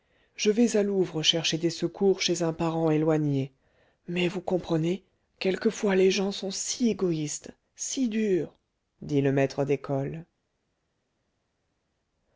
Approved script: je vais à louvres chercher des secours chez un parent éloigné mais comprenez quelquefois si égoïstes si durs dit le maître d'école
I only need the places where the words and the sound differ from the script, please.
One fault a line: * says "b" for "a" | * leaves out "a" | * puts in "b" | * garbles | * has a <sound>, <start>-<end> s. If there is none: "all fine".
* puts in "vous"
* puts in "les gens sont"